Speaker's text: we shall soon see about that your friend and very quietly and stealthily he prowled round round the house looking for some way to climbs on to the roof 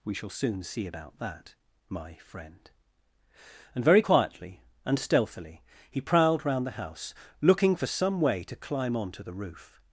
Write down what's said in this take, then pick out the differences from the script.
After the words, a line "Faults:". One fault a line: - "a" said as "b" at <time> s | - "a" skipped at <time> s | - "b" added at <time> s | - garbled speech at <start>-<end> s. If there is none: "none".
we shall soon see about that my friend and very quietly and stealthily he prowled round the house looking for some way to climb on to the roof
Faults:
- "your" said as "my" at 1.9 s
- "round" skipped at 6.7 s
- "climbs" said as "climb" at 8.5 s